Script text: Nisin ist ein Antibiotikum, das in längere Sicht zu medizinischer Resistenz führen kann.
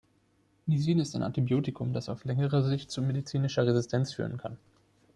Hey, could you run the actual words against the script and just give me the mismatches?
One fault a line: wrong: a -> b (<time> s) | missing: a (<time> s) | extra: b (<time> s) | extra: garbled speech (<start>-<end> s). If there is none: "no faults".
wrong: in -> auf (2.1 s)